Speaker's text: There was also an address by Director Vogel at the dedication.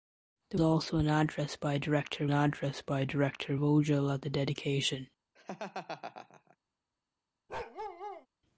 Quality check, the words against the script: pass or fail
fail